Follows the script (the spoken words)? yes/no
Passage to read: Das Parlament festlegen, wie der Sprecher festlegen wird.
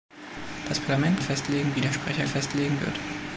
yes